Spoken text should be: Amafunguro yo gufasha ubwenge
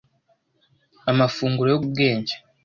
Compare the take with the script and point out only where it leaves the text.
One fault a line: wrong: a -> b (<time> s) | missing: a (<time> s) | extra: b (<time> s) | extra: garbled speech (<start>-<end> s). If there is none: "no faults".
missing: gufasha (1.8 s)